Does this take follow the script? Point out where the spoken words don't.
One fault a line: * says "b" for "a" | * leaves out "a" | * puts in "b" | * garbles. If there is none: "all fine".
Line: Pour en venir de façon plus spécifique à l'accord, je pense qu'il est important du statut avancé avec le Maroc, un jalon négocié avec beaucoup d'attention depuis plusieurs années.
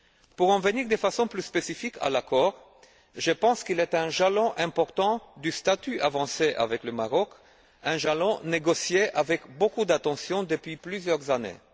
* puts in "un jalon"